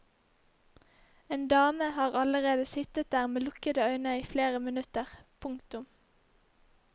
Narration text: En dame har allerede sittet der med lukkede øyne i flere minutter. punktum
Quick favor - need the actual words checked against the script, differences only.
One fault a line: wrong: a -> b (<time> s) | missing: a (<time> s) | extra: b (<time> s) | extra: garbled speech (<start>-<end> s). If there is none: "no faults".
no faults